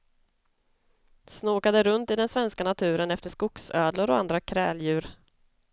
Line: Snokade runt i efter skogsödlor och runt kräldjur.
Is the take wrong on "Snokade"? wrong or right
right